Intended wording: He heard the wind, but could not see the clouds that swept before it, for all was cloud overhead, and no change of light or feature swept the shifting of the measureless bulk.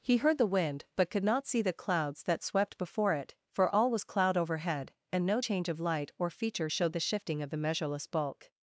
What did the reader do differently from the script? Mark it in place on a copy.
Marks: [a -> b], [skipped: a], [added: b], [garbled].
He heard the wind, but could not see the clouds that swept before it, for all was cloud overhead, and no change of light or feature [swept -> showed] the shifting of the measureless bulk.